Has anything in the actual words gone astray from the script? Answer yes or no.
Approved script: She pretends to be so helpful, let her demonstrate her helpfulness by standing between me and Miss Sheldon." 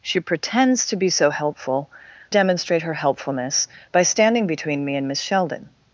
yes